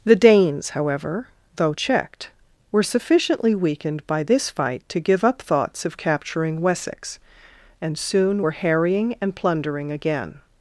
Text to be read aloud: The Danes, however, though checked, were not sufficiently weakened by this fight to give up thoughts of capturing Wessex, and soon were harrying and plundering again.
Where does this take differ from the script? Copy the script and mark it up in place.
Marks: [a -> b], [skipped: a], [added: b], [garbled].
The Danes, however, though checked, were [skipped: not] sufficiently weakened by this fight to give up thoughts of capturing Wessex, and soon were harrying and plundering again.